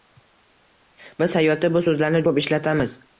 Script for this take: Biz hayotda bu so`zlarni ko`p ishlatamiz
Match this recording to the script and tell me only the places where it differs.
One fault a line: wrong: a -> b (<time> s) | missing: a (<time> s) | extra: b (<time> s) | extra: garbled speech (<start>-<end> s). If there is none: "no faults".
no faults